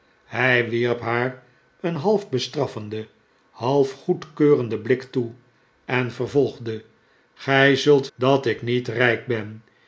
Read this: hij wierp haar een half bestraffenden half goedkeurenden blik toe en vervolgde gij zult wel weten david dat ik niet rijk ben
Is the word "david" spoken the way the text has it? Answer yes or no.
no